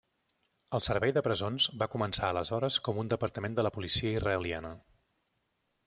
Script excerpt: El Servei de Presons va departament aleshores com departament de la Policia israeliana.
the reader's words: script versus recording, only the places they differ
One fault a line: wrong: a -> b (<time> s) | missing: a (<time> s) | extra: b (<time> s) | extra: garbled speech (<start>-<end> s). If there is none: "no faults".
wrong: departament -> començar (1.9 s)
extra: un (3.0 s)